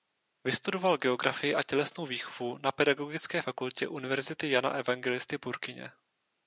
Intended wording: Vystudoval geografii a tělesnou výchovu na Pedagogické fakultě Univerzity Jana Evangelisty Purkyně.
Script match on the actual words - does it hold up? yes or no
yes